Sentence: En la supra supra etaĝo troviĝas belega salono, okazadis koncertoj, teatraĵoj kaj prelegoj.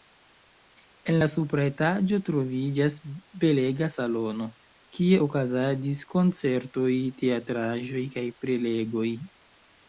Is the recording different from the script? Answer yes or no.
yes